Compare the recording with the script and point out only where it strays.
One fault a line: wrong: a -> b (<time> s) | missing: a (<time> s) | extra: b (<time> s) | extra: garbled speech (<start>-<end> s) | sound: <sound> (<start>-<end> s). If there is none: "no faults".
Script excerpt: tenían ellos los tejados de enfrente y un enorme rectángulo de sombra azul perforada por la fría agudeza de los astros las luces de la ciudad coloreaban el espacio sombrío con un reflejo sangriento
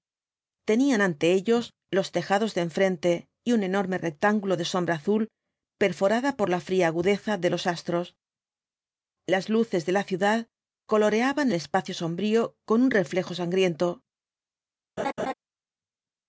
extra: ante (1.0 s)
sound: laugh (15.0-15.3 s)